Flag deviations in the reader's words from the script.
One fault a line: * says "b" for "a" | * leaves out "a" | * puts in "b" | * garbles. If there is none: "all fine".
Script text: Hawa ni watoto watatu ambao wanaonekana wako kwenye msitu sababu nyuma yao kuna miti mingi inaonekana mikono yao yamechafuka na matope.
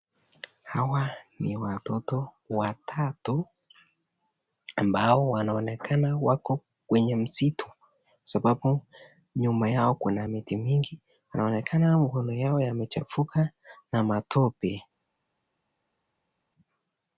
all fine